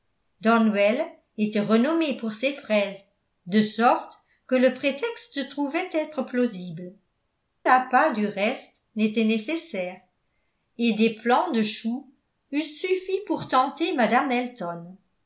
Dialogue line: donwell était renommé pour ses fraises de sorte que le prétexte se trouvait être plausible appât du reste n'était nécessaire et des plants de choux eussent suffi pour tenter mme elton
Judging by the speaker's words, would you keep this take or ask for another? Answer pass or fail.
pass